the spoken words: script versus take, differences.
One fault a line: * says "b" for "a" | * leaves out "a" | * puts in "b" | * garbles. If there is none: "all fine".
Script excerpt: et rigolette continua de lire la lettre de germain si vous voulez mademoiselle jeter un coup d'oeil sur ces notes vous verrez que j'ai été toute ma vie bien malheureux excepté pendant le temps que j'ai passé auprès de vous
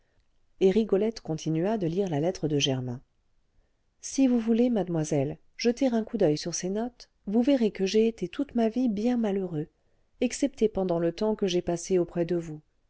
all fine